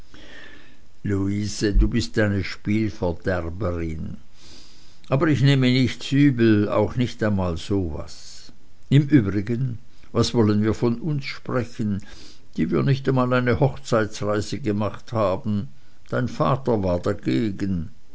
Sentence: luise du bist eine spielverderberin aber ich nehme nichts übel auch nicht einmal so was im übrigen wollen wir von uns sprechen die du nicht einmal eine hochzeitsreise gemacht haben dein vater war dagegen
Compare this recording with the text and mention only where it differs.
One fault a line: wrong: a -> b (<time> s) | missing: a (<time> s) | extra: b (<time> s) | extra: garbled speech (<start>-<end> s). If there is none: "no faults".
extra: was (10.1 s)
wrong: du -> wir (12.7 s)